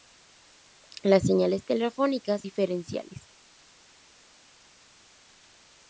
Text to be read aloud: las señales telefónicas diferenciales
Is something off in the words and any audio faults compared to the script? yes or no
no